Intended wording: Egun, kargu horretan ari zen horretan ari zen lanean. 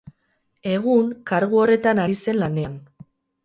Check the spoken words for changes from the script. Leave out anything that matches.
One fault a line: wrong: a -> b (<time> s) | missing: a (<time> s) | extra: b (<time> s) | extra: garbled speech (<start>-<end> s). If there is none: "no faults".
missing: horretan ari zen (2.4 s)